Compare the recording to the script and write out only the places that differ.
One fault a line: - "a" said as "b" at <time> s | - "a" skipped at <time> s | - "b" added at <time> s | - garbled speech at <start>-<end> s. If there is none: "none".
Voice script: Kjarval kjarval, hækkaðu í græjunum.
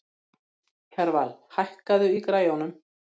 - "kjarval" skipped at 1.4 s